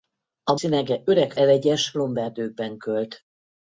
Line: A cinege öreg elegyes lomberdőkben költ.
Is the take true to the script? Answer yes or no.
yes